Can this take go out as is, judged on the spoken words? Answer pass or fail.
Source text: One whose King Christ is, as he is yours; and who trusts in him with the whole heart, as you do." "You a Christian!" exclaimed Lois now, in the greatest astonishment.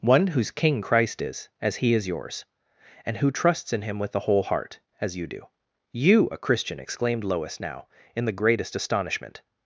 pass